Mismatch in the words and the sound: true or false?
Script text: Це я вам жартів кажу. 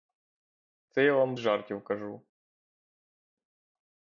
false